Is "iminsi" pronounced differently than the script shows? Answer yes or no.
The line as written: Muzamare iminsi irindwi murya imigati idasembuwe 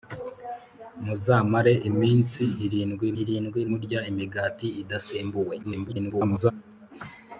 no